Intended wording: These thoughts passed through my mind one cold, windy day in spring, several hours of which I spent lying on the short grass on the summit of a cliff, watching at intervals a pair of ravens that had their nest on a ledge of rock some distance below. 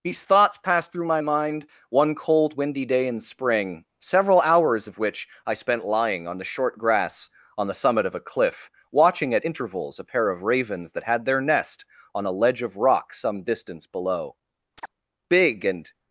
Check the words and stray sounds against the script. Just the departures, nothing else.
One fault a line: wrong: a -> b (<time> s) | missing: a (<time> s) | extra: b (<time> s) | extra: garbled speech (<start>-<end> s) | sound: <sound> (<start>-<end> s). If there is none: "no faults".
sound: chirp (14.8-14.9 s)
extra: Big and (15.3 s)